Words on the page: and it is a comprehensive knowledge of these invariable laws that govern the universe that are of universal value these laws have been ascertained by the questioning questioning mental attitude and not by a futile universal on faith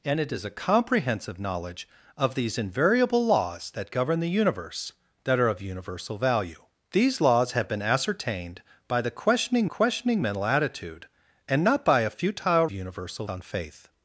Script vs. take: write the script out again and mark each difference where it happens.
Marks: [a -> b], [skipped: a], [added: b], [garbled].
and it is a comprehensive knowledge of these invariable laws that govern the universe that are of universal value these laws have been ascertained by the questioning questioning mental attitude and not by a futile universal on faith